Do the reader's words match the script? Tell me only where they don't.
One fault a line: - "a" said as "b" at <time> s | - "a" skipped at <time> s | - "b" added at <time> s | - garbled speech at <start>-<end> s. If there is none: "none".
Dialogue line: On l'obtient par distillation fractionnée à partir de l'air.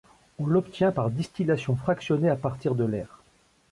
none